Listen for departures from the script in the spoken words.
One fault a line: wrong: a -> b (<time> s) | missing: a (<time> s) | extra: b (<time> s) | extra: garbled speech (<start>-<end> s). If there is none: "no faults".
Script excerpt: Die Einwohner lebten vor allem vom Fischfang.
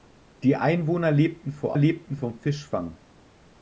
wrong: allem -> lebten (1.8 s)